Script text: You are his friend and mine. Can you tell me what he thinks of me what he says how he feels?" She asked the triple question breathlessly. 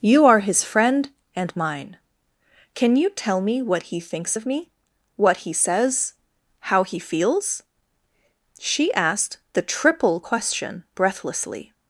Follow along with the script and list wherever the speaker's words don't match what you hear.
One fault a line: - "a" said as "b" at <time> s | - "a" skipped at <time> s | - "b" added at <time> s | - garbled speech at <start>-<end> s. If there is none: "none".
none